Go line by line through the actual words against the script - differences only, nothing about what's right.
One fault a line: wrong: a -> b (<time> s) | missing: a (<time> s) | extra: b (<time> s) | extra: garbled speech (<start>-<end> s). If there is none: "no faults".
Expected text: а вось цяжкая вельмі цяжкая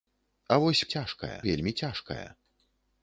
no faults